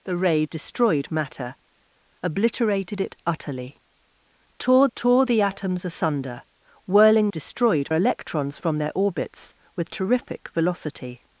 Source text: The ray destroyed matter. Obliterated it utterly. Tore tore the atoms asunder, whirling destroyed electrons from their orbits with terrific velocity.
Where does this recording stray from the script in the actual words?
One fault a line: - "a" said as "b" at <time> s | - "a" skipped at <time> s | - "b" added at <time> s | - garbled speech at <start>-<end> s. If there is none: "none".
none